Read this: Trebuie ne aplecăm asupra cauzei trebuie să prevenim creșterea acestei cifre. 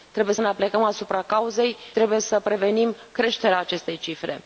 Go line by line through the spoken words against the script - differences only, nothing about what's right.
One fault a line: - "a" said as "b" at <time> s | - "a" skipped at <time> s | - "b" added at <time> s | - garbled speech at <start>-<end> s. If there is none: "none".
none